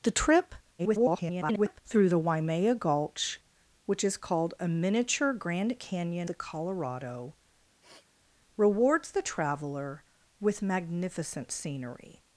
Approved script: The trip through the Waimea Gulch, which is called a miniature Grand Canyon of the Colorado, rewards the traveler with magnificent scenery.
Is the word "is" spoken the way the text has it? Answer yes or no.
yes